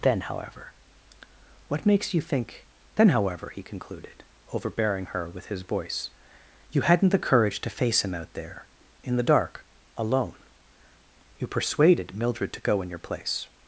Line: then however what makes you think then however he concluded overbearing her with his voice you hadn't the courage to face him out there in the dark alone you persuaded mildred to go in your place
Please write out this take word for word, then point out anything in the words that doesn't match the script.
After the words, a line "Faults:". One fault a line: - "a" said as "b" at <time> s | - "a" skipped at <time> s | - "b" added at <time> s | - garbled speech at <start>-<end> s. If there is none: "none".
then however what makes you think then however he concluded overbearing her with his voice you hadn't the courage to face him out there in the dark alone you persuaded mildred to go in your place
Faults:
none